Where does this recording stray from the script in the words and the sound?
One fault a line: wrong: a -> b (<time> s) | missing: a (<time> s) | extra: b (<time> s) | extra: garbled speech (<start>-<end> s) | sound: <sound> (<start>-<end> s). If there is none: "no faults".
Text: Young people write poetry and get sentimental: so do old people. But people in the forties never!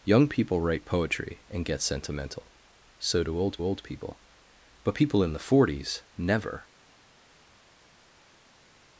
extra: old (3.6 s)